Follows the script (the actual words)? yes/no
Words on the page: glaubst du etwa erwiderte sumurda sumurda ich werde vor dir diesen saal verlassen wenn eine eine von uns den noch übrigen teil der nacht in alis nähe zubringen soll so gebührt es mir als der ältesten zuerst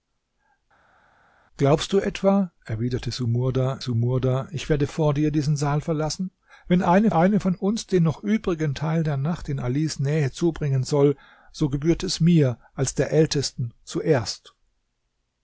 yes